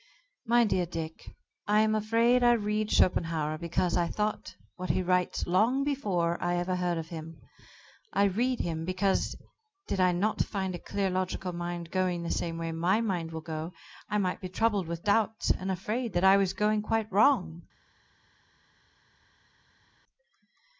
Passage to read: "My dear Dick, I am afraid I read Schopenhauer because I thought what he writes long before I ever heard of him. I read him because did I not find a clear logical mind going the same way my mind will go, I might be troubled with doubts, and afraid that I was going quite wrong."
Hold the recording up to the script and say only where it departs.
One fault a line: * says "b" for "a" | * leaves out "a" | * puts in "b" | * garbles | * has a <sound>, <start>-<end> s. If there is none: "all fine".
all fine